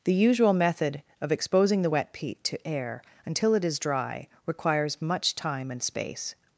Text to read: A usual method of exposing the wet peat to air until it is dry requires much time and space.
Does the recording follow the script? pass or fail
fail